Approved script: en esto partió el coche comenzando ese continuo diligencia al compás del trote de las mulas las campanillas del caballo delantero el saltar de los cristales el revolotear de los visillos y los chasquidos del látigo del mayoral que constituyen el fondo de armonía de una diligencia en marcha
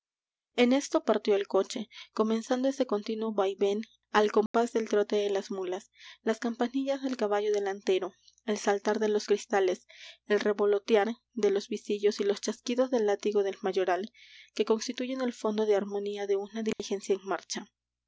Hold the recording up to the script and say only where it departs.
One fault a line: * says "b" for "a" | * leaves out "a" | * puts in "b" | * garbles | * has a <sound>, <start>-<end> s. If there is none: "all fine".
* says "vaivén" for "diligencia"
* has a dropout, 4.5-4.5 s
* has a dropout, 16.7-16.8 s